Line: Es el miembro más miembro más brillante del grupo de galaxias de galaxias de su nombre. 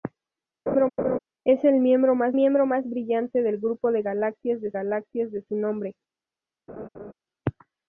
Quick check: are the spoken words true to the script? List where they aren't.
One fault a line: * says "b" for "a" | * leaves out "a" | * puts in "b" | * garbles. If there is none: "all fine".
all fine